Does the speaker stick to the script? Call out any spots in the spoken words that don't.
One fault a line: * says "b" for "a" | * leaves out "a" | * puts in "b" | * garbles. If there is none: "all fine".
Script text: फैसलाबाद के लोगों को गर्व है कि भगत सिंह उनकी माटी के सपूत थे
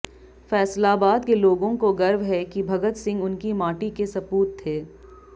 all fine